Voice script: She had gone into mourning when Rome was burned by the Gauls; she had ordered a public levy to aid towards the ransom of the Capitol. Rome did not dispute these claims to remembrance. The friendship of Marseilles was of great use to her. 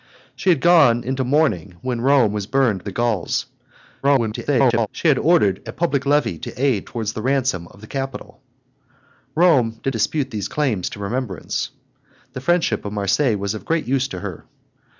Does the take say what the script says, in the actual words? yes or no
no